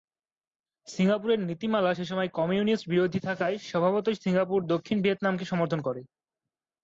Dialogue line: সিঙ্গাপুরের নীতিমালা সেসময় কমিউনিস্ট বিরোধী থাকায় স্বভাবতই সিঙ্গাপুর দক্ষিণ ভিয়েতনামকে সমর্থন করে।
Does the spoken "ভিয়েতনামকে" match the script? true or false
true